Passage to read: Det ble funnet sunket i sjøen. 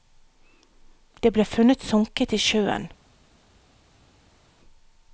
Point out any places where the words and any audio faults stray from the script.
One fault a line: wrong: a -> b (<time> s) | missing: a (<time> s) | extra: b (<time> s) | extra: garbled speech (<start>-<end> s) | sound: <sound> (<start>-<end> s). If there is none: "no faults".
no faults